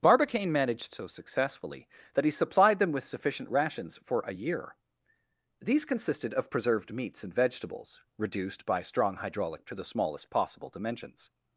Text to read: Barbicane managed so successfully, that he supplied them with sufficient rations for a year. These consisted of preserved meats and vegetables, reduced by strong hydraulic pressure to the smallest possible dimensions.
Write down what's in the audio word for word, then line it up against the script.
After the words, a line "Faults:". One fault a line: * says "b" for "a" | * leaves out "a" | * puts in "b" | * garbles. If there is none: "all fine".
Barbicane managed so successfully, that he supplied them with sufficient rations for a year. These consisted of preserved meats and vegetables, reduced by strong hydraulic to the smallest possible dimensions.
Faults:
* leaves out "pressure"